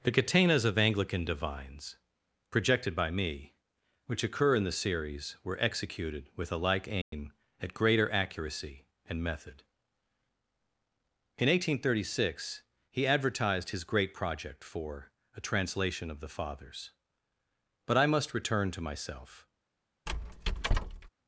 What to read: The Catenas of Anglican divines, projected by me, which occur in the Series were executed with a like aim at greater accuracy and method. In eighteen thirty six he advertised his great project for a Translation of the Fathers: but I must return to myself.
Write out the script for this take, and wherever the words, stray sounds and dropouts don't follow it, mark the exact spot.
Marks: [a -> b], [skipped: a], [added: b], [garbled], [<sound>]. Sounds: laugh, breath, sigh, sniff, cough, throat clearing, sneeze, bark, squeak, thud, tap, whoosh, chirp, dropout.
The Catenas of Anglican divines, projected by me, which occur in the Series were executed with a like aim [dropout] at greater accuracy and method. In eighteen thirty six he advertised his great project for a Translation of the Fathers: but I must return to myself. [squeak]